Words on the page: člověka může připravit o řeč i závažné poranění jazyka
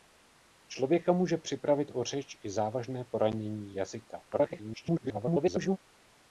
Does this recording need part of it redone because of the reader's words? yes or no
yes